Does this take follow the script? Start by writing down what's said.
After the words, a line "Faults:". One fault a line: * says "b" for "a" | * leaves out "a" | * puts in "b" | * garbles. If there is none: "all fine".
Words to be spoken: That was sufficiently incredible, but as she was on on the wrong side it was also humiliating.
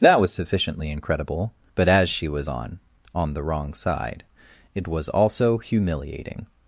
That was sufficiently incredible, but as she was on on the wrong side it was also humiliating.
Faults:
all fine